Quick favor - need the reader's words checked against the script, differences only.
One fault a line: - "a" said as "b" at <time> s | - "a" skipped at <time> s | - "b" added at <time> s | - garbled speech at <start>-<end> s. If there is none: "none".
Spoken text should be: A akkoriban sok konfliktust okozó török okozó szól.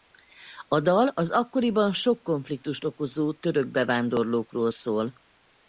- "dal az" added at 0.8 s
- "okozó" said as "bevándorlókról" at 3.7 s